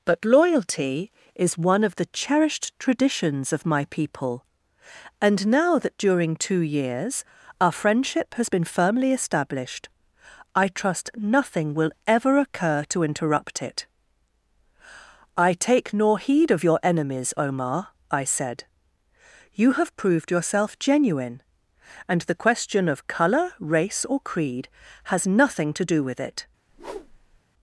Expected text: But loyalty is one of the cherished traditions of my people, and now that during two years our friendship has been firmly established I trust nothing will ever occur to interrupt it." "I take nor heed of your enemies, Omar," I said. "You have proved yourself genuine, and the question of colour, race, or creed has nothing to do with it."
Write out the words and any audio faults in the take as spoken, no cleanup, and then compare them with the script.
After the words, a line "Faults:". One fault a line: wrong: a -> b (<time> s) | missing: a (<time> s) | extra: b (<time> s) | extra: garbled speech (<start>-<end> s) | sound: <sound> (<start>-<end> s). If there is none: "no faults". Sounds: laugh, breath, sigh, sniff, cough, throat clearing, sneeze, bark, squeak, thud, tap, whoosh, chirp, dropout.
But loyalty is one of the cherished traditions of my people, and now that during two years our friendship has been firmly established I trust nothing will ever occur to interrupt it." "I take nor heed of your enemies, Omar," I said. "You have proved yourself genuine, and the question of colour, race, or creed has nothing to do with it."
Faults:
sound: whoosh (26.7-27.4 s)